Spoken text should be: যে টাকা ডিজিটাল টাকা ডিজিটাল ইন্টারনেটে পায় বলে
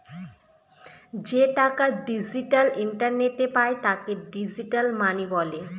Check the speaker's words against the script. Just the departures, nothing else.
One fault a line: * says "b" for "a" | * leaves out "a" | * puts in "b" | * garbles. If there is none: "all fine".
* says "ইন্টারনেটে পায় তাকে" for "টাকা"
* says "মানি" for "ইন্টারনেটে পায়"